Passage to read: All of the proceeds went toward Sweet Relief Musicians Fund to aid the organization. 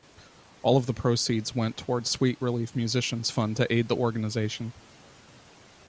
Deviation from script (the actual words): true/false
false